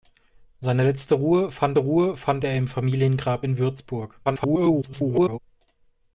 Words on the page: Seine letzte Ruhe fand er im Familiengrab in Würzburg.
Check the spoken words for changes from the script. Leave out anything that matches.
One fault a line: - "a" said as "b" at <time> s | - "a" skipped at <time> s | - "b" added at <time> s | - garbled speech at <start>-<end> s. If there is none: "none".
- "Ruhe fand" added at 1.8 s
- garbled speech at 4.2-5.4 s